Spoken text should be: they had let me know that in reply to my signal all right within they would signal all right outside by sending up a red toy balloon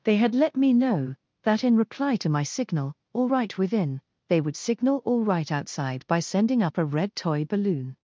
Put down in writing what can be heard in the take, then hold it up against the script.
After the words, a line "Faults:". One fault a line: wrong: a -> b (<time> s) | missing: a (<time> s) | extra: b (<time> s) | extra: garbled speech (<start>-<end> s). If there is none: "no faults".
they had let me know that in reply to my signal all right within they would signal all right outside by sending up a red toy balloon
Faults:
no faults